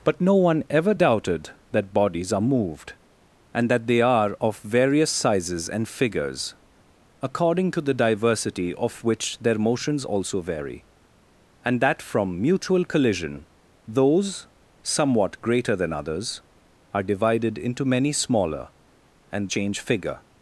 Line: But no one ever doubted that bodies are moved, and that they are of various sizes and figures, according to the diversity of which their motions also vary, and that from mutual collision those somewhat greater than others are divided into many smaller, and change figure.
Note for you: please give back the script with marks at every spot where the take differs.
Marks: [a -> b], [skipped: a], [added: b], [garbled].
But no one ever doubted that bodies are moved, and that they are of various sizes and figures, according to the diversity of which their motions also vary, and that from mutual collision those somewhat greater than others are divided into many smaller, and change figure.